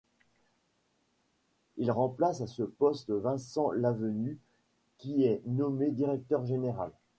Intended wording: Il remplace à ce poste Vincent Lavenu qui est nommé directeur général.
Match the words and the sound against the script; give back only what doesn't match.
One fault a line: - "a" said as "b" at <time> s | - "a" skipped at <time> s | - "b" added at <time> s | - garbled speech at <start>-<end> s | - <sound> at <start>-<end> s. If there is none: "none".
none